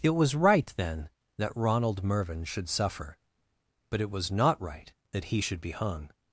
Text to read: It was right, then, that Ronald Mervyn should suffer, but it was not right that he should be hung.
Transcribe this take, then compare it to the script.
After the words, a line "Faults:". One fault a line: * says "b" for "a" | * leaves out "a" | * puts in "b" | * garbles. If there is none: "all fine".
It was right, then, that Ronald Mervyn should suffer, but it was not right that he should be hung.
Faults:
all fine